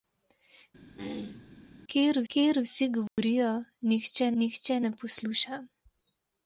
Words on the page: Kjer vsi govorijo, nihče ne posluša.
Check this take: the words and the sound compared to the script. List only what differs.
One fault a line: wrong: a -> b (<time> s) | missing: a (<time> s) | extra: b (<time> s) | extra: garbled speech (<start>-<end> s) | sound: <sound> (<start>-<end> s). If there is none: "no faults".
sound: throat clearing (1.0-1.5 s)
extra: kjer (2.3 s)
sound: dropout (3.1-3.2 s)
extra: nihče (4.4 s)